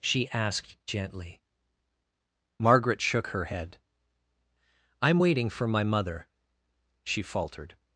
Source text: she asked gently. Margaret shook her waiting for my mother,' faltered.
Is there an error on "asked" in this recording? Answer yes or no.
no